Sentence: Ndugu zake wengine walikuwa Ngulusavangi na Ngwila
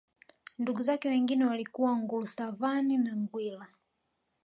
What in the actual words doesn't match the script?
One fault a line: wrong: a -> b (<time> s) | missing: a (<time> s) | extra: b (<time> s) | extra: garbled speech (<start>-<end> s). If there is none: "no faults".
no faults